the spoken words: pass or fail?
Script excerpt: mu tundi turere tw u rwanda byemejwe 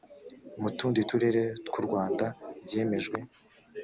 pass